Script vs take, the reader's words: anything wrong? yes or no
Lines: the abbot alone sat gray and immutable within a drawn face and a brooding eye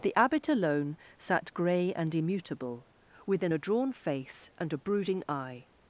no